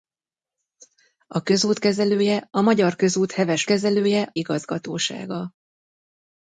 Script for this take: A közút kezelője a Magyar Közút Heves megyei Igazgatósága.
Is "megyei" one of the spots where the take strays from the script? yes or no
yes